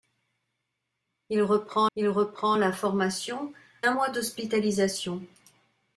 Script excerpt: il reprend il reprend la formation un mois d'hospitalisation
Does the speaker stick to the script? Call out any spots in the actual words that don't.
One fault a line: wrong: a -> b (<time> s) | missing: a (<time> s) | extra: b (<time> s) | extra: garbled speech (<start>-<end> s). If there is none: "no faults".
no faults